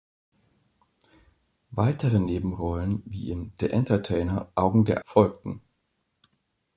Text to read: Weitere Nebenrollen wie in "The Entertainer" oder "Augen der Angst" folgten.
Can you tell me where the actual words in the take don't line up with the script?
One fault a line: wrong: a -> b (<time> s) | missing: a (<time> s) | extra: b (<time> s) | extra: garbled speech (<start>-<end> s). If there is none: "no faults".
missing: oder (4.5 s)
missing: Angst (5.0 s)